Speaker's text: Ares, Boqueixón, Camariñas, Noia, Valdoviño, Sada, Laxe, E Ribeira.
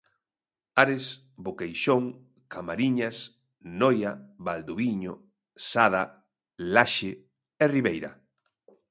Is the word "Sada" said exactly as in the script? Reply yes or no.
yes